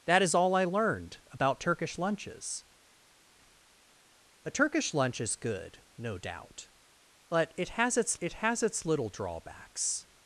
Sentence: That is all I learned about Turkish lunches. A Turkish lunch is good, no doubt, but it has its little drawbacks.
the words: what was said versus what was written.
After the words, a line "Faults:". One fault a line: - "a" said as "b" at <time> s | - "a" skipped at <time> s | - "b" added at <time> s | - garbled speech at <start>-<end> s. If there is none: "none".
That is all I learned about Turkish lunches. A Turkish lunch is good, no doubt, but it has its it has its little drawbacks.
Faults:
- "it has its" added at 8.2 s